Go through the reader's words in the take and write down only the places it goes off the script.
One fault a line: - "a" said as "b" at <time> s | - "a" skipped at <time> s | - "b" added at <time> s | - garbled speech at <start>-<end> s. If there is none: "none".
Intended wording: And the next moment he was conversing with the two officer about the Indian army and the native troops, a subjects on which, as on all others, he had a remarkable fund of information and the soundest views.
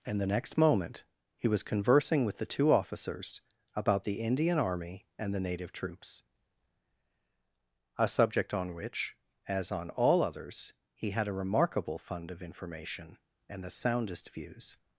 - "officer" said as "officers" at 2.7 s
- "subjects" said as "subject" at 8.1 s